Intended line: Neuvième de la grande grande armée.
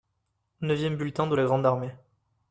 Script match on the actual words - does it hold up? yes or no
no